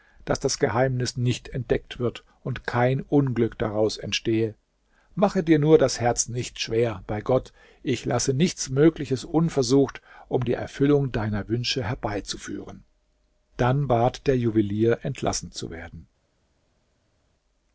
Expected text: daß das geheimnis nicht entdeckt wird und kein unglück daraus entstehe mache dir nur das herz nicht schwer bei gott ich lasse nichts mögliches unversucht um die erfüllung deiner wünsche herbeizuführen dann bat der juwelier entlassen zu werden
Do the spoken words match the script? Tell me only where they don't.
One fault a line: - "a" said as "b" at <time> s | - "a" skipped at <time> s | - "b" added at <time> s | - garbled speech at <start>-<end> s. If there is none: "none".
none